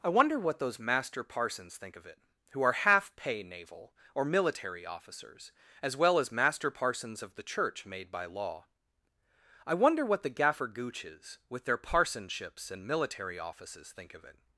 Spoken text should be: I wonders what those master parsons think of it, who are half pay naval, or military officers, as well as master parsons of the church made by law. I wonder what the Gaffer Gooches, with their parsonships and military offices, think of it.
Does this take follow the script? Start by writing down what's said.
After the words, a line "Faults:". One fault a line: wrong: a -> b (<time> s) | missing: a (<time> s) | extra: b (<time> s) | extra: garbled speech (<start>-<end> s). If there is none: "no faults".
I wonder what those master parsons think of it, who are half pay naval, or military officers, as well as master parsons of the church made by law. I wonder what the Gaffer Gooches, with their parsonships and military offices, think of it.
Faults:
wrong: wonders -> wonder (0.1 s)